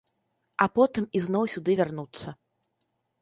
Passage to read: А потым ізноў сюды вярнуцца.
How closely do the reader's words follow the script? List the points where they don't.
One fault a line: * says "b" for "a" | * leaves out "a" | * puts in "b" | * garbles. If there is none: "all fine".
all fine